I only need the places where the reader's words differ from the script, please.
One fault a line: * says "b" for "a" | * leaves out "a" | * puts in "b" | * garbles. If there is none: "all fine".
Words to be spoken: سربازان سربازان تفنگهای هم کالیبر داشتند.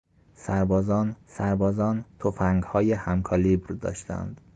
all fine